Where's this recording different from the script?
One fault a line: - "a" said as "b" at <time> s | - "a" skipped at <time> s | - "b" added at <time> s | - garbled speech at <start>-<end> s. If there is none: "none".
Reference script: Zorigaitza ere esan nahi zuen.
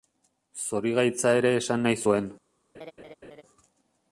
none